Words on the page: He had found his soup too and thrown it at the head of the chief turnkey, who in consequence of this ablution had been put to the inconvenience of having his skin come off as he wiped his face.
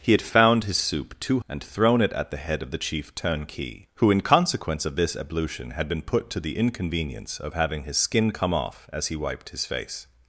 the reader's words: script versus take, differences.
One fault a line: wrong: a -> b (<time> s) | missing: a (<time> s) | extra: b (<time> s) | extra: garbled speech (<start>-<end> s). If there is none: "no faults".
no faults